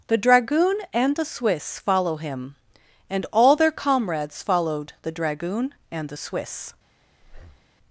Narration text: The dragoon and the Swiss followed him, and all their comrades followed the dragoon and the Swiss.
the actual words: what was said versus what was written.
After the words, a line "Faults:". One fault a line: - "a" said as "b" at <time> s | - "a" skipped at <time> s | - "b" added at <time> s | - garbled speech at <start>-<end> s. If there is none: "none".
The dragoon and the Swiss follow him, and all their comrades followed the dragoon and the Swiss.
Faults:
- "followed" said as "follow" at 1.8 s